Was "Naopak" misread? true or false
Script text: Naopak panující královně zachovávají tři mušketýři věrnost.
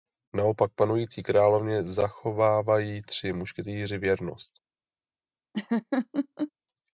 false